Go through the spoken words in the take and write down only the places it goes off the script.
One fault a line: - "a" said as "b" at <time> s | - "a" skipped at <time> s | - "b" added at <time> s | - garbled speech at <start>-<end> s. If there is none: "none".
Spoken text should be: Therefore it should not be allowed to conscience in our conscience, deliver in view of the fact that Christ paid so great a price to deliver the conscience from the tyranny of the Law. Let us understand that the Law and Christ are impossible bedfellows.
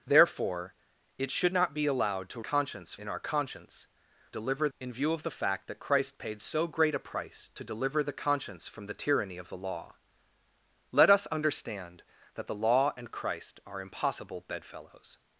none